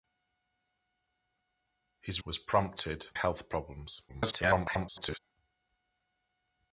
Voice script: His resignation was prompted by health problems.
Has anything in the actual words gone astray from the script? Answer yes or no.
yes